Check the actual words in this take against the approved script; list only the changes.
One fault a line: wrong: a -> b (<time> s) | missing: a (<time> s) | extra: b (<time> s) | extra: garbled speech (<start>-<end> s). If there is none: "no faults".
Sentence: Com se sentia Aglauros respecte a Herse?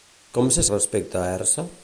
missing: sentia Aglauros (0.6 s)